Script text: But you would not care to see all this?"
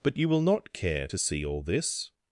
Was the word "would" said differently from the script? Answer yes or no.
yes